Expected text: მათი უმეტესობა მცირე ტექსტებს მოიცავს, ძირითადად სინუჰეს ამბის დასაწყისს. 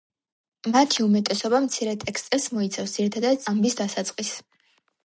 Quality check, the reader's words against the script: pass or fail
fail